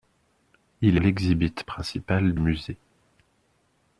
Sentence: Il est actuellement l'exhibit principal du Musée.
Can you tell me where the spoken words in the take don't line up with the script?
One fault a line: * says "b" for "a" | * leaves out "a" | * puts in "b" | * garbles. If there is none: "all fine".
* leaves out "est actuellement"
* leaves out "du"